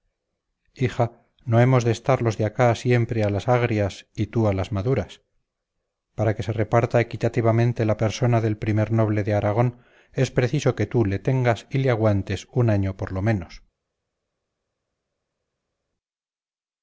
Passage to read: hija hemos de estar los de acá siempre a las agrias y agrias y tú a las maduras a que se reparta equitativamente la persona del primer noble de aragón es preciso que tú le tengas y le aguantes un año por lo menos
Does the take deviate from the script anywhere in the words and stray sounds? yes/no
yes